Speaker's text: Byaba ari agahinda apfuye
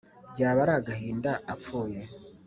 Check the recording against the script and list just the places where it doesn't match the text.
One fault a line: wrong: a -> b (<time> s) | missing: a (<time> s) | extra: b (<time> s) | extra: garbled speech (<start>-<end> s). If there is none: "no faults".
no faults